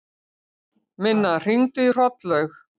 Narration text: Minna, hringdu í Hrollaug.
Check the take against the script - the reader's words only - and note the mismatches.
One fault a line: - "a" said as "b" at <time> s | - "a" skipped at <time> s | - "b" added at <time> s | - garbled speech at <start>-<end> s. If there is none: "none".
none